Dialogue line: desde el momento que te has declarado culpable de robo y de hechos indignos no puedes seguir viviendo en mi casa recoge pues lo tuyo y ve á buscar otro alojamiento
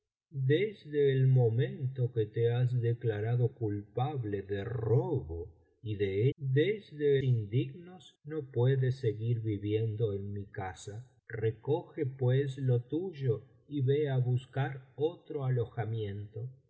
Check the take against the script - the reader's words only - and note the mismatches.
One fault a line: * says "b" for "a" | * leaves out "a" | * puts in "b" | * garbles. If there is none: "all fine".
* says "desde" for "hechos"